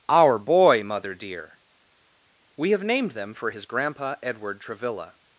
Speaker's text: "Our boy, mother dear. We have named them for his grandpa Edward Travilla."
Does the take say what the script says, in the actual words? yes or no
yes